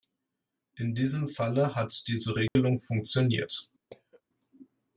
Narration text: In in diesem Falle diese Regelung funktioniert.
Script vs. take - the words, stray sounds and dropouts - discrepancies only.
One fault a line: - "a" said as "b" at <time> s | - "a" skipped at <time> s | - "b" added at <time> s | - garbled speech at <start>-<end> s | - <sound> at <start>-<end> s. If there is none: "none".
- "in" skipped at 0.9 s
- "hat" added at 1.8 s
- dropout at 2.5-2.6 s
- cough at 3.9-4.2 s